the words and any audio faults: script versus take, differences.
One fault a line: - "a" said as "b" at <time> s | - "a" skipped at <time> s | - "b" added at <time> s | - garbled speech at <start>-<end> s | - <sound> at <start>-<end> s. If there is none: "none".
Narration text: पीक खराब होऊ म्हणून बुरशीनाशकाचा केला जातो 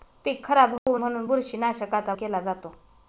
- dropout at 0.8-0.9 s